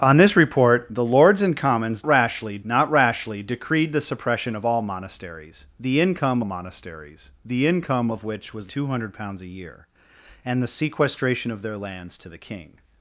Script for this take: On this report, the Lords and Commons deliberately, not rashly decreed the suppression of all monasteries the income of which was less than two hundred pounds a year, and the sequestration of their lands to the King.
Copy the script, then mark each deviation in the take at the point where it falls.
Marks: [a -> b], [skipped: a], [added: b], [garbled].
On this report, the Lords and Commons [deliberately, -> rashly] not rashly decreed the suppression of all monasteries the income [added: monasteries the income] of which was [skipped: less than] two hundred pounds a year, and the sequestration of their lands to the King.